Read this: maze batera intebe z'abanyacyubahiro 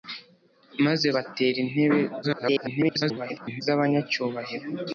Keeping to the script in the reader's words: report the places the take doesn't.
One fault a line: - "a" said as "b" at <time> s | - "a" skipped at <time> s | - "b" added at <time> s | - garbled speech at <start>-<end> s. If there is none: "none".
- garbled speech at 2.2-3.6 s